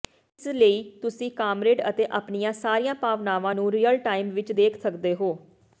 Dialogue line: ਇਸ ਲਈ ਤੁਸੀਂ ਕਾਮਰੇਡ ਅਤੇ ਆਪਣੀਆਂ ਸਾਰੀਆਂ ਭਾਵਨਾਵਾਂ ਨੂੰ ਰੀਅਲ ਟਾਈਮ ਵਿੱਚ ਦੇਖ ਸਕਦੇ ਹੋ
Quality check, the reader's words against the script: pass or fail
pass